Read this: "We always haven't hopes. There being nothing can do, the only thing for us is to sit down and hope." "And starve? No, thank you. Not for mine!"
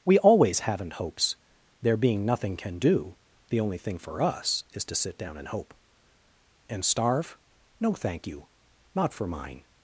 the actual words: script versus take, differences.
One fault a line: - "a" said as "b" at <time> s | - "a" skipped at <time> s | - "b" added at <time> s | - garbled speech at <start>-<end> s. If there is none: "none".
none